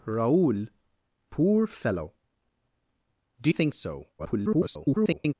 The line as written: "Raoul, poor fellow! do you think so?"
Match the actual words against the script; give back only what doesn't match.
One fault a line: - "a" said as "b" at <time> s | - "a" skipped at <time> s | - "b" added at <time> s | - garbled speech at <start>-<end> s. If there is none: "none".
- "you" skipped at 3.5 s
- garbled speech at 4.2-5.3 s